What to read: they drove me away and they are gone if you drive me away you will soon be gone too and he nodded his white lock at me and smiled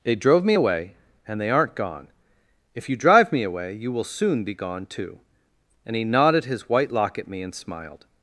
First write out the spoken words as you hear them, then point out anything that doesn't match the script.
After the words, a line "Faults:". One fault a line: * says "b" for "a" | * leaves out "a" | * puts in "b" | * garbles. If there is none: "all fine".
they drove me away and they aren't gone if you drive me away you will soon be gone too and he nodded his white lock at me and smiled
Faults:
* says "aren't" for "are"